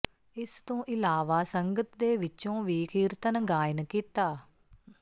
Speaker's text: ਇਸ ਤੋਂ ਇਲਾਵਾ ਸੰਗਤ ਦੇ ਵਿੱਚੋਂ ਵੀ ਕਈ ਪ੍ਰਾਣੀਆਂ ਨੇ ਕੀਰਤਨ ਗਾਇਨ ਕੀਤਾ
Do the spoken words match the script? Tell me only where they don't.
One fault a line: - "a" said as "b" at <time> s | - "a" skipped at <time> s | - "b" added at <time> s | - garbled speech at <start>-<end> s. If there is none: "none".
- "ਕਈ ਪ੍ਰਾਣੀਆਂ ਨੇ" skipped at 2.9 s